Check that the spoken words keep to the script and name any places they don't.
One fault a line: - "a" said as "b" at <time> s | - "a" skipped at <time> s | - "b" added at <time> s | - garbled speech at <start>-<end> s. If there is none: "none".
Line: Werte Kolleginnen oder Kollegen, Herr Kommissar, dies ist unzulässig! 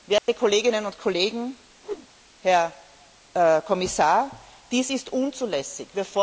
- "oder" said as "und" at 0.8 s